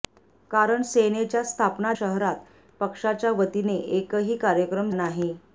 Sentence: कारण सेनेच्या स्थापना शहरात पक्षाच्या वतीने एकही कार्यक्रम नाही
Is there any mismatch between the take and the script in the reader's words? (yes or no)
no